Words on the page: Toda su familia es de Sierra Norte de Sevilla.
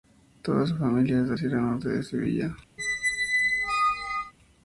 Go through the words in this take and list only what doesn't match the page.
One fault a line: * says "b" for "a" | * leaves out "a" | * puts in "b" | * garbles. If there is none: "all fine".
all fine